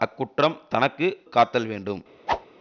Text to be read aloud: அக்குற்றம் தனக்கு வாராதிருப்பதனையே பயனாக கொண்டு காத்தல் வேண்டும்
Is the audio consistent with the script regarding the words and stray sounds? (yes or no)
no